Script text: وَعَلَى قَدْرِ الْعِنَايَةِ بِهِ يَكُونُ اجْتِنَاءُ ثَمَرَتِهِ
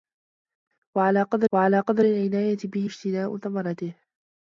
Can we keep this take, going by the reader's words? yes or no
no